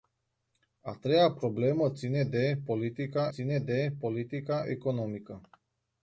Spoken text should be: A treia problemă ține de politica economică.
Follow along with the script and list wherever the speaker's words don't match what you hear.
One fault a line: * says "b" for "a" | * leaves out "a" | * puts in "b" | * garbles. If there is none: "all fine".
* puts in "ține de politica"